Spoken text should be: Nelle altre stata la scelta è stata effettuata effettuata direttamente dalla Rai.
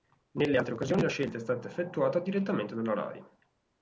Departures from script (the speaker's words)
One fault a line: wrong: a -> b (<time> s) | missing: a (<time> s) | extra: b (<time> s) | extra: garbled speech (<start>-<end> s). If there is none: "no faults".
wrong: stata -> occasioni (0.8 s)
missing: effettuata (2.2 s)